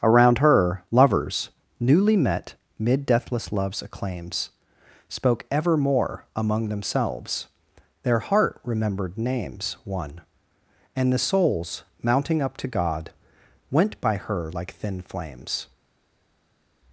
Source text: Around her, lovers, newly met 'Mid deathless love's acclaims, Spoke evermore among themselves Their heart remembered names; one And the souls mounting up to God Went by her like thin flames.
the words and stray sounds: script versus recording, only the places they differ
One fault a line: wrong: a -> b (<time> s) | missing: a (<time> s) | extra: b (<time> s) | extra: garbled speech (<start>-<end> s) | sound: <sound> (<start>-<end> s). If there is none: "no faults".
no faults